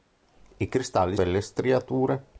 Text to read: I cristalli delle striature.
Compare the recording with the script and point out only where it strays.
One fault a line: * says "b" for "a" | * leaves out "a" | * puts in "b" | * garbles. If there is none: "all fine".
all fine